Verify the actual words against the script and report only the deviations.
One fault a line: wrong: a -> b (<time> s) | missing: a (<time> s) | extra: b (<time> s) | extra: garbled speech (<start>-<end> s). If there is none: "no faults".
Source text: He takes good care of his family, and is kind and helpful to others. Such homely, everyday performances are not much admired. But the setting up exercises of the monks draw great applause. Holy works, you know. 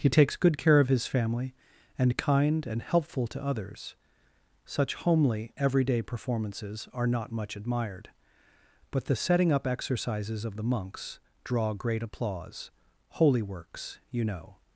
missing: is (2.2 s)